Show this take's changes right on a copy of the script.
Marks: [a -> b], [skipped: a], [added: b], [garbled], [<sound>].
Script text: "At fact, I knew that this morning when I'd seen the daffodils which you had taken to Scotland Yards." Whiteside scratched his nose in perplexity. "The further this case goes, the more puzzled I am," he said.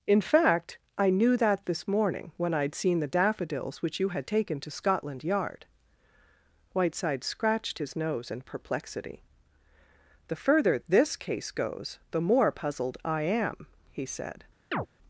["At -> In] fact, I knew that this morning when I'd seen the daffodils which you had taken to Scotland [Yards." -> Yard] Whiteside scratched his nose in perplexity. "The further this case goes, the more puzzled I am," he said. [chirp]